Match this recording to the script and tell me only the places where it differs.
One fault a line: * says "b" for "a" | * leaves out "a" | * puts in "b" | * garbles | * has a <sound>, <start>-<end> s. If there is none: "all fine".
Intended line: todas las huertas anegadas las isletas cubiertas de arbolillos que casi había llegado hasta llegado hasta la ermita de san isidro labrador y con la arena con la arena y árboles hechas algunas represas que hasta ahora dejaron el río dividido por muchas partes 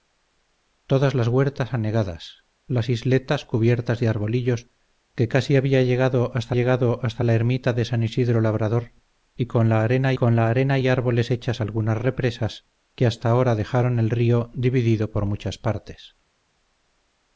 all fine